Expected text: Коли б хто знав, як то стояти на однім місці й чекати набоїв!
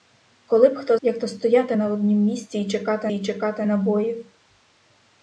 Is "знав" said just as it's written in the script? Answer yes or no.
no